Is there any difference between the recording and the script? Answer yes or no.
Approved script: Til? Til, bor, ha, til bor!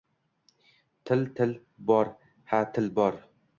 no